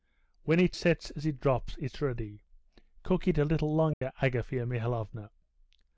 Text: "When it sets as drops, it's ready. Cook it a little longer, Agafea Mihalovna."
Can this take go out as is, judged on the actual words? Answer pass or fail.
fail